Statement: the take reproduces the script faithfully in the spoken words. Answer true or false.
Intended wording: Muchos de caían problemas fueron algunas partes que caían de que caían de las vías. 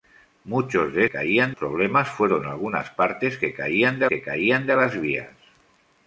true